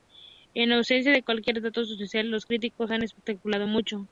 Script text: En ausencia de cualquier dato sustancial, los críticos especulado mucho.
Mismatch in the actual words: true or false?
true